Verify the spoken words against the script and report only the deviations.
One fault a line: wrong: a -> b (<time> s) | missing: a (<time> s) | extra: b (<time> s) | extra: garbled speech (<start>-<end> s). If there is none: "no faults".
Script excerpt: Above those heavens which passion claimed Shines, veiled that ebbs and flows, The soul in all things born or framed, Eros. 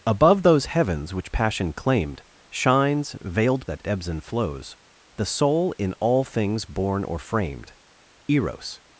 no faults